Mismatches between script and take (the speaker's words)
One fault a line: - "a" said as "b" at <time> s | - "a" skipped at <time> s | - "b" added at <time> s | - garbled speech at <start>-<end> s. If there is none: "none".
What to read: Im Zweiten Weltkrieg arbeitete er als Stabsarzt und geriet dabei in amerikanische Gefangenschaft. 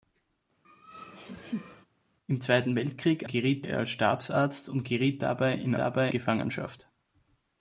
- "arbeitete" said as "geriet" at 3.3 s
- "amerikanische" said as "dabei" at 5.8 s